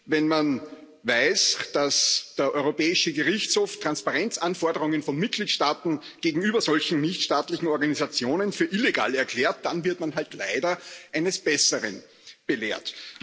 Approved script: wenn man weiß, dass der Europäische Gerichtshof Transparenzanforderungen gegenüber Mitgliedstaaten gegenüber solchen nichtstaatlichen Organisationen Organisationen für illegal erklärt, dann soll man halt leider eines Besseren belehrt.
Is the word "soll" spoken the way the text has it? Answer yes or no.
no